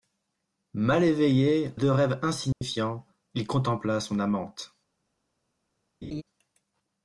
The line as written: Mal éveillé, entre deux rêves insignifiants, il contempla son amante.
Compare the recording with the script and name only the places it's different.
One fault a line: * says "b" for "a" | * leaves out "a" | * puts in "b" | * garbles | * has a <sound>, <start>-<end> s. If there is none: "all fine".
* leaves out "entre"
* has a dropout, 2.5-2.6 s
* has a laugh, 6.0-6.2 s